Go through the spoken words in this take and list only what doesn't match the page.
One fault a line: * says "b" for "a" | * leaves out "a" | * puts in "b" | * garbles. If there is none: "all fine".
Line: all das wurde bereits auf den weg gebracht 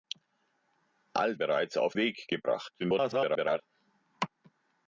* leaves out "das wurde"
* leaves out "den"
* garbles